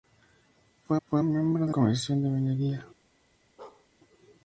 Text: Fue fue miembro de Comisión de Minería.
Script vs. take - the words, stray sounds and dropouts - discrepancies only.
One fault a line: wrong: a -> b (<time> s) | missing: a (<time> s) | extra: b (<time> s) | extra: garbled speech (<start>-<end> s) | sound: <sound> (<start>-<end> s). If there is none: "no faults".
sound: bark (3.6-3.9 s)